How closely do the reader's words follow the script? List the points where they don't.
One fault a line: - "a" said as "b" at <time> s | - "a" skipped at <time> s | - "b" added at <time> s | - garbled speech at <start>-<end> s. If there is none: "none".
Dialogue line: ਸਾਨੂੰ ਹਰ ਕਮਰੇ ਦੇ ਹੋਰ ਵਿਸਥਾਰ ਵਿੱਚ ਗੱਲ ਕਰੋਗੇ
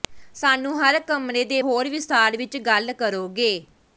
none